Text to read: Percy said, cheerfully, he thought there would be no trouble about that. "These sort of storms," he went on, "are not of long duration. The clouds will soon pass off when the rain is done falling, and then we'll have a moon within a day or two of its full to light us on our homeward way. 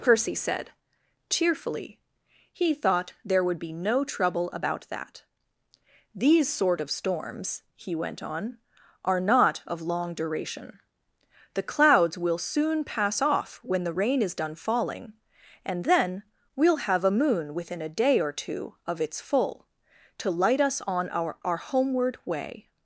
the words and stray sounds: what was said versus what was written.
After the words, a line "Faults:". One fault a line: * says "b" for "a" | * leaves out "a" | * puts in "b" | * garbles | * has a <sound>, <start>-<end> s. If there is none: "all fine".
Percy said, cheerfully, he thought there would be no trouble about that. "These sort of storms," he went on, "are not of long duration. The clouds will soon pass off when the rain is done falling, and then we'll have a moon within a day or two of its full to light us on our our homeward way.
Faults:
* puts in "our"